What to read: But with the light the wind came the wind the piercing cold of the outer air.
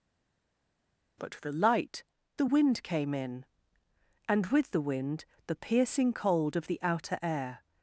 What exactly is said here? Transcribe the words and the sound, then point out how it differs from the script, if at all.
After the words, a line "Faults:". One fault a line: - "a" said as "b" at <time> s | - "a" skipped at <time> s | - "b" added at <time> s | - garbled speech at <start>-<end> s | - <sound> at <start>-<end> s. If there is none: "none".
But with the light the wind came in, and with the wind the piercing cold of the outer air.
Faults:
- "in and with" added at 3.1 s